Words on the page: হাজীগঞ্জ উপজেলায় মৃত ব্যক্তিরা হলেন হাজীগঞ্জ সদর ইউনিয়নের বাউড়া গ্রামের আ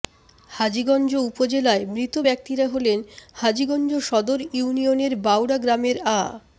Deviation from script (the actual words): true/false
false